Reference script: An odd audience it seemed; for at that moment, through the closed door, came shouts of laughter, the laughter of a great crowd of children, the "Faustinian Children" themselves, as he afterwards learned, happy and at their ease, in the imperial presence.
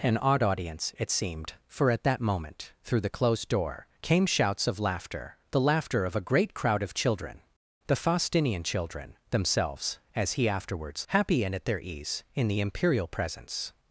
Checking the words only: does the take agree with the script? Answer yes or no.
no